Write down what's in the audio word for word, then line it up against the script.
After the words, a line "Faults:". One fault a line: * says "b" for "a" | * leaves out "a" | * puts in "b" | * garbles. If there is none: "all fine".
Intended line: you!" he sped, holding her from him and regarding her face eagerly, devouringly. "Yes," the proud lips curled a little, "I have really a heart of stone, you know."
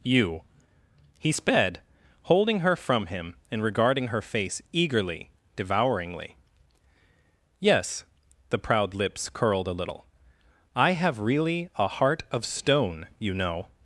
you!" he sped, holding her from him and regarding her face eagerly, devouringly. "Yes," the proud lips curled a little, "I have really a heart of stone, you know."
Faults:
all fine